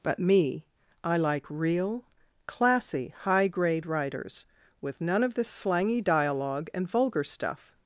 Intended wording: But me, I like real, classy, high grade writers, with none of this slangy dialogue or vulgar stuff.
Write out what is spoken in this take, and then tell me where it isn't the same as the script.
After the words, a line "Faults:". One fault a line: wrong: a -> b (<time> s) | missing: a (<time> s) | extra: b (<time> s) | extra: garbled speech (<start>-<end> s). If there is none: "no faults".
But me, I like real, classy, high grade writers, with none of this slangy dialogue and vulgar stuff.
Faults:
wrong: or -> and (6.7 s)